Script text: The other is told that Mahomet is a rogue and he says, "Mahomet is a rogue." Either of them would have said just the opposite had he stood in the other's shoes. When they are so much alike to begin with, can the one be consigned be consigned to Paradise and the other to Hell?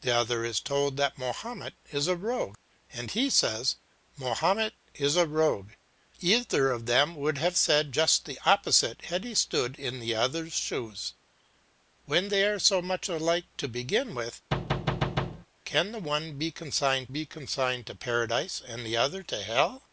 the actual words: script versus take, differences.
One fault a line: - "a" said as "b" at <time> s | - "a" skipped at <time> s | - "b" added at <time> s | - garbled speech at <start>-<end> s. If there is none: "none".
none